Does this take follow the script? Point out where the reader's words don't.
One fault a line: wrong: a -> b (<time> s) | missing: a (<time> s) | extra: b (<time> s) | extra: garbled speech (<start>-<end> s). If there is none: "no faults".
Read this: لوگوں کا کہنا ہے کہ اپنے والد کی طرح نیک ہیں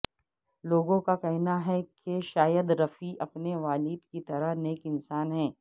extra: شاہد رفیع (2.2 s)
extra: انسان (4.8 s)